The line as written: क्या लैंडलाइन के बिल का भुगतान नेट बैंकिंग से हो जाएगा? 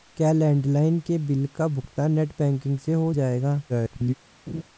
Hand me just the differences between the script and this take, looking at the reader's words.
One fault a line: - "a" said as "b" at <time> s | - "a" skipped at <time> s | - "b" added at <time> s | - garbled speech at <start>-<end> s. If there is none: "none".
- garbled speech at 3.7-4.1 s